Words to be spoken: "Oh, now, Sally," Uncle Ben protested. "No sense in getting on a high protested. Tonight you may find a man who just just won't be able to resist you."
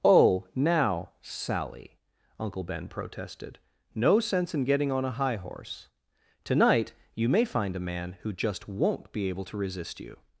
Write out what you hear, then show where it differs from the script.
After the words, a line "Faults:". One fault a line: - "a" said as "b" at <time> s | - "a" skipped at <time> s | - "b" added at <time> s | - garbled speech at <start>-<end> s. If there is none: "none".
"Oh, now, Sally," Uncle Ben protested. "No sense in getting on a high horse. Tonight you may find a man who just won't be able to resist you."
Faults:
- "protested" said as "horse" at 5.3 s
- "just" skipped at 8.7 s